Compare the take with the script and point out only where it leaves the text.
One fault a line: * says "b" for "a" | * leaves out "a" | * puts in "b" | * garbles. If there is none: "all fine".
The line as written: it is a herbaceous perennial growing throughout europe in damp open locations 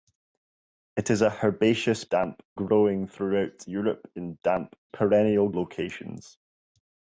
* says "damp" for "perennial"
* says "perennial" for "open"